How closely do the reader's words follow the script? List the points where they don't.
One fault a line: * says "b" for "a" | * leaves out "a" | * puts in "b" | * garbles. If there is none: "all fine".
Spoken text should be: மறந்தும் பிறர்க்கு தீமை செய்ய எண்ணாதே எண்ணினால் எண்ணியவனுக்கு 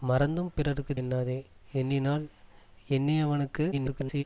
* leaves out "தீமை செய்ய"
* garbles